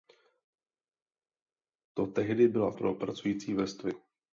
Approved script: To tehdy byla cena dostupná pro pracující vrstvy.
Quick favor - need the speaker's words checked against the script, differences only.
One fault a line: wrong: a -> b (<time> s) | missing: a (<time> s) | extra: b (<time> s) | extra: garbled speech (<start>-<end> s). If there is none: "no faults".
missing: cena dostupná (2.7 s)